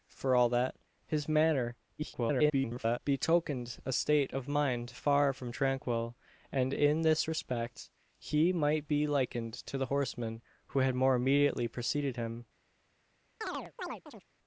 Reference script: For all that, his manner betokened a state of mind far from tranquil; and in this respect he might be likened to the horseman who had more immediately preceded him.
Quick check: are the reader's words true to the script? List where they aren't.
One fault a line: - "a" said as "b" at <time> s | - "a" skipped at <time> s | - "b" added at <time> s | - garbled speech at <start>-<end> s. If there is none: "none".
- garbled speech at 2.0-3.0 s